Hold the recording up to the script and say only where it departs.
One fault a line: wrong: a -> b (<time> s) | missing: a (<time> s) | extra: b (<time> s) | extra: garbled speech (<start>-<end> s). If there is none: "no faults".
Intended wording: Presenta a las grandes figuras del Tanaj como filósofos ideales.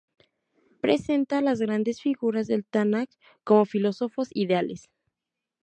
no faults